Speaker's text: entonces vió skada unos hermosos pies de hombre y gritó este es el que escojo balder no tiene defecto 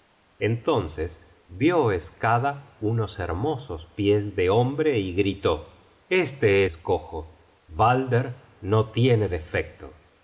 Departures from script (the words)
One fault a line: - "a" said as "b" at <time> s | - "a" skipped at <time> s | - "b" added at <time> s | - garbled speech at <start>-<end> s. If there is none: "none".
- "es el que" skipped at 6.7 s